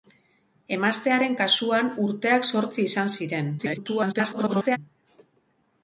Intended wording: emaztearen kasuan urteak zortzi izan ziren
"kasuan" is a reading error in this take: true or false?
false